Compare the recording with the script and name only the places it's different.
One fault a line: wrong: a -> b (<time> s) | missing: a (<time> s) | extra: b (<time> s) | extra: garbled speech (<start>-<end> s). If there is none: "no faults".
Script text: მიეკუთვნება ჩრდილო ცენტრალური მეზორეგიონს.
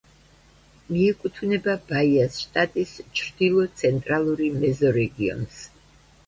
extra: ბაიას შტატის (1.9 s)